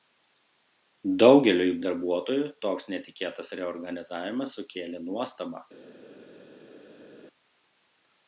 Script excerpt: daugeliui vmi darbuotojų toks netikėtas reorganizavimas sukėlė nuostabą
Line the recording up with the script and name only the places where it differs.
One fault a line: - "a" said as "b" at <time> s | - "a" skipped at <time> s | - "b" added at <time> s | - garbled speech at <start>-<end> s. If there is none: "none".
- "vmi" skipped at 1.8 s